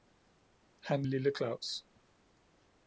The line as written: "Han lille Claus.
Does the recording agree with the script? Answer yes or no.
yes